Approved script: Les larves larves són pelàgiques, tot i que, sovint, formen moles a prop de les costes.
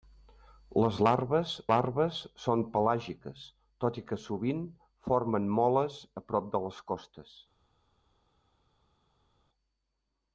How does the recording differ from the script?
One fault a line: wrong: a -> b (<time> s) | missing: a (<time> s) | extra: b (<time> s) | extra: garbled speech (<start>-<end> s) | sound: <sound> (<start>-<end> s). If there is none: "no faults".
no faults